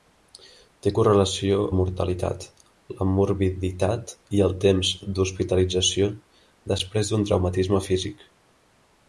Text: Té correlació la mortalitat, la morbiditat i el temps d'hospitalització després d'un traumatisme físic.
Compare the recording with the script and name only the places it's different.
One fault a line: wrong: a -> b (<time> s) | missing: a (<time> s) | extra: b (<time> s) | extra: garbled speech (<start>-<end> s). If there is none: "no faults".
no faults